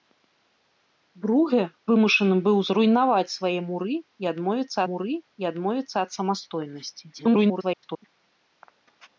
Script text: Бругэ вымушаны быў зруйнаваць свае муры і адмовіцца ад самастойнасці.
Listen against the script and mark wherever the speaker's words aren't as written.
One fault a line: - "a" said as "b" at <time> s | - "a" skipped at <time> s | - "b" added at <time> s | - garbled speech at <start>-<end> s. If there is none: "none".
- "муры і адмовіцца" added at 4.9 s
- garbled speech at 7.1-8.0 s